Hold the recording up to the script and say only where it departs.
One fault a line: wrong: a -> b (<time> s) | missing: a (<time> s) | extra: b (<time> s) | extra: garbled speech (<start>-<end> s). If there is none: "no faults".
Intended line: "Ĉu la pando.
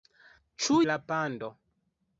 no faults